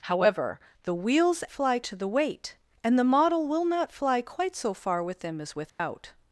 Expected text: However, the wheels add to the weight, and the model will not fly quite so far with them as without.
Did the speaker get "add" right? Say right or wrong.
wrong